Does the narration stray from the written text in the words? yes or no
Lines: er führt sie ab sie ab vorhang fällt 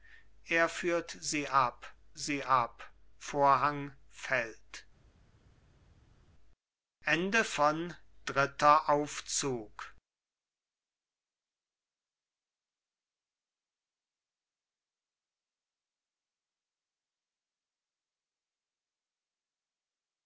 no